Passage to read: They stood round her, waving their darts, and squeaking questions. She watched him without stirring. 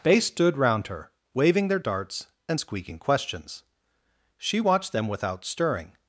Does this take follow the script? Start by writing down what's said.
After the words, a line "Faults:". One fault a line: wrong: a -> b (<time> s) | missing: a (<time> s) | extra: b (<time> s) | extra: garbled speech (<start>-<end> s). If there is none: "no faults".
They stood round her, waving their darts, and squeaking questions. She watched them without stirring.
Faults:
wrong: him -> them (4.9 s)